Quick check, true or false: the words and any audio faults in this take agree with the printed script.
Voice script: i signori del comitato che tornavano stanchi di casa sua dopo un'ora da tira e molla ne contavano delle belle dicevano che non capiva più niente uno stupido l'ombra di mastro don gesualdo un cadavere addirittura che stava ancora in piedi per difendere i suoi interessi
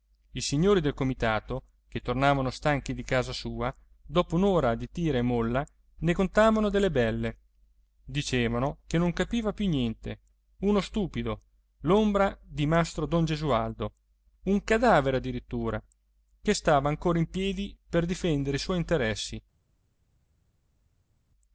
false